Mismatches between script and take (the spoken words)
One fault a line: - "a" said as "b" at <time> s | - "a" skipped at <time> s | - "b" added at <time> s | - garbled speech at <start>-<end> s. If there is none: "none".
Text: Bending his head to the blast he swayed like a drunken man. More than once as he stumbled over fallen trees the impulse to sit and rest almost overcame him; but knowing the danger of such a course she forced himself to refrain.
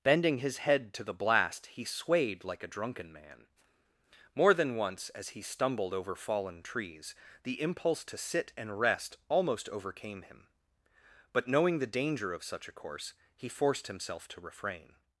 - "she" said as "he" at 13.3 s